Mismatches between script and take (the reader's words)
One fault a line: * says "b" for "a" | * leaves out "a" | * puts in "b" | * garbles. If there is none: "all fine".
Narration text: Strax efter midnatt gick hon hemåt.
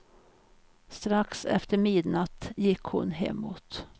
all fine